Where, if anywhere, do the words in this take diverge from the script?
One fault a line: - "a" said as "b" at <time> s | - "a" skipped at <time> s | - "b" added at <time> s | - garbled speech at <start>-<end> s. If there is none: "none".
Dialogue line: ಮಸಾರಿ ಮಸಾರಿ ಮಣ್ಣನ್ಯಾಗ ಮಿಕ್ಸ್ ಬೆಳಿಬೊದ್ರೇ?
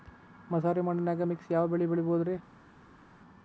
- "ಮಸಾರಿ" skipped at 0.8 s
- "ಯಾವ ಬೆಳಿ" added at 1.5 s